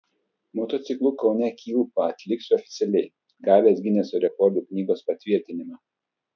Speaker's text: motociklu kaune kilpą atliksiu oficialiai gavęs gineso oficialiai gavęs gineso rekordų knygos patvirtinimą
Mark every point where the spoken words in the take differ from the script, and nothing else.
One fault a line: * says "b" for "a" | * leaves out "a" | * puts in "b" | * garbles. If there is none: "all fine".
* leaves out "oficialiai gavęs gineso"